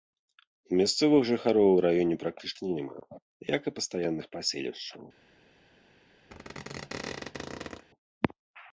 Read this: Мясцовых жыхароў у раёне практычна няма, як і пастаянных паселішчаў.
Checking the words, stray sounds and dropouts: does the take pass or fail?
fail